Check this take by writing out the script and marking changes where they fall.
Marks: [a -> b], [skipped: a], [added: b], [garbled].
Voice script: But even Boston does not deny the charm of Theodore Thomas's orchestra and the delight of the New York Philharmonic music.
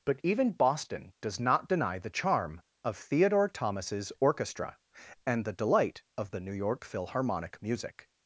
But even Boston does not deny the charm of Theodore Thomas's orchestra and the delight of the New York Philharmonic music.